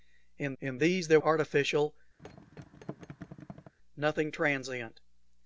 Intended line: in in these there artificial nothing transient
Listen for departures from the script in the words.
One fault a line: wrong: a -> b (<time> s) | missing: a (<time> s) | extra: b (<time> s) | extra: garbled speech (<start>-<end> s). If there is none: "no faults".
no faults